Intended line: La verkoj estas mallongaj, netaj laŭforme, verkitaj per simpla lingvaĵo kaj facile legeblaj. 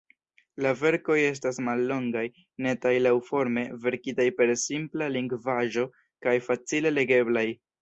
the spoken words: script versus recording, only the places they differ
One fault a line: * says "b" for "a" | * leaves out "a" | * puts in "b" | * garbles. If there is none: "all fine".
all fine